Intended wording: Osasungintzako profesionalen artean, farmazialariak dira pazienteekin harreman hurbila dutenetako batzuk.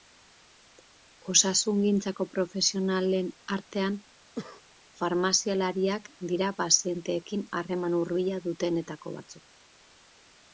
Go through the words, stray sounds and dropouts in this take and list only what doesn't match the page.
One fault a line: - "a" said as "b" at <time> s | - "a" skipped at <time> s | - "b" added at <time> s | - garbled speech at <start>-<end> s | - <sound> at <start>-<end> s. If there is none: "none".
- cough at 4.4-4.6 s